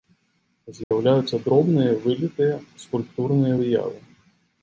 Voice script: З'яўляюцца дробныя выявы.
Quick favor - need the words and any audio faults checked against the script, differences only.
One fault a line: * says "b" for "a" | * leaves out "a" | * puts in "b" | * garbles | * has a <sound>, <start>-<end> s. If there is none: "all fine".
* has a dropout, 0.8-0.9 s
* puts in "вылітыя скульптурныя"